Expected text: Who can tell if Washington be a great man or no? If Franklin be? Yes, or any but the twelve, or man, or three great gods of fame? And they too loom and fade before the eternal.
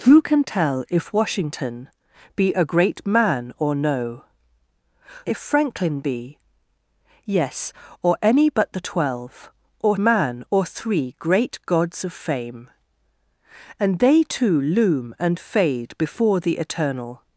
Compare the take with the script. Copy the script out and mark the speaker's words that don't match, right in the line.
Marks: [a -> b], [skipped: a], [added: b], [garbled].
Who can tell if Washington be a great man or no? If Franklin be? Yes, or any but the twelve, or man, or three great gods of fame? And they too loom and fade before the eternal.